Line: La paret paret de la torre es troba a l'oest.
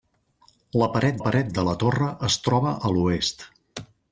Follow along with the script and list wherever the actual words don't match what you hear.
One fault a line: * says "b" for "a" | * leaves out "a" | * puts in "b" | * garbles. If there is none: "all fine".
all fine